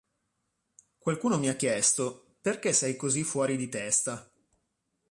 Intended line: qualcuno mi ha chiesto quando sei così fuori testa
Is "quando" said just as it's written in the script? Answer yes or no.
no